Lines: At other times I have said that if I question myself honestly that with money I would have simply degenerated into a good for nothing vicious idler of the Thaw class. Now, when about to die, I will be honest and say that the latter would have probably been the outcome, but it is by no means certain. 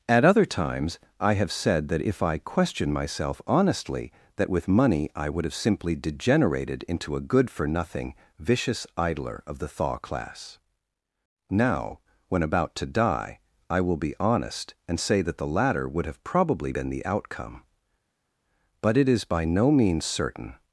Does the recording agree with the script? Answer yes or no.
yes